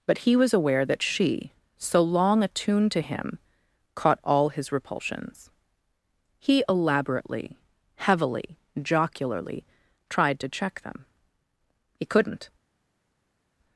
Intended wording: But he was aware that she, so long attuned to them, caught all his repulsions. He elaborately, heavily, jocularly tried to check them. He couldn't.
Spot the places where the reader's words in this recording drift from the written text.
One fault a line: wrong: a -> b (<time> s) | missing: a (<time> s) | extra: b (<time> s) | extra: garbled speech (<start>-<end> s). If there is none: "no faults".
wrong: them -> him (3.0 s)